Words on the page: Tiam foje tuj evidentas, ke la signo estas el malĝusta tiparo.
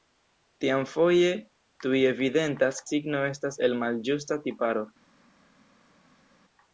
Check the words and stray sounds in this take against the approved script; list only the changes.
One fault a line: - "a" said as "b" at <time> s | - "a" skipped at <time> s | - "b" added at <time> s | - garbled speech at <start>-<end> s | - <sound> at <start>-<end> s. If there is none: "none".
- "ke la" skipped at 2.8 s